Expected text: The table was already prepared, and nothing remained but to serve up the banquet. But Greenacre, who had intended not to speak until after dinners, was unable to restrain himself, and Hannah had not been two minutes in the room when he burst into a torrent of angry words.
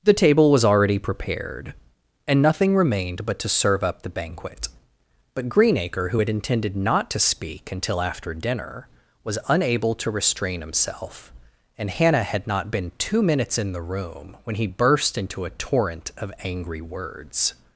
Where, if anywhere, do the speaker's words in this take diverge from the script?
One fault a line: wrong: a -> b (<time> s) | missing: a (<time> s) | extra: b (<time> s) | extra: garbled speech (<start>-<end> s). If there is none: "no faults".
wrong: dinners -> dinner (8.3 s)